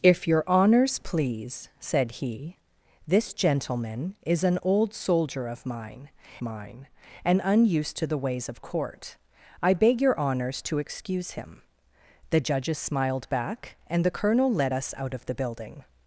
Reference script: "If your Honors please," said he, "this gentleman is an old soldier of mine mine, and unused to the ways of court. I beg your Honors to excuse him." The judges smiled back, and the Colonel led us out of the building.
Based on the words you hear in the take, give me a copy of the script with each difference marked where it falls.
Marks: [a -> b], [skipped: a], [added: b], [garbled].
"If your Honors please," said he, "this gentleman is an old soldier of mine mine, and unused to the ways of court. I beg your Honors to excuse him." The judges smiled back, and the Colonel led us out of the building.